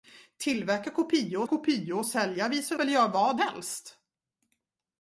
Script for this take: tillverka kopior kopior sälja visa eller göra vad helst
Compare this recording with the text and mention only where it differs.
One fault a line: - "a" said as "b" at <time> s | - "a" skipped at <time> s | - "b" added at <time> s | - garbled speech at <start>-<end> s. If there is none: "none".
none